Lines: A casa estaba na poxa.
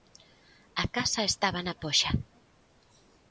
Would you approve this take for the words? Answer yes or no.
yes